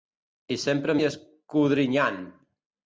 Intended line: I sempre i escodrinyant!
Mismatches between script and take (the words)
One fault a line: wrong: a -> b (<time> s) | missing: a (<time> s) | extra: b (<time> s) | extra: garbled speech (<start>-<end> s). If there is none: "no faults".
no faults